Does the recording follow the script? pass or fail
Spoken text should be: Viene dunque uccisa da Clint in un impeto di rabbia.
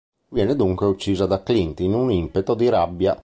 pass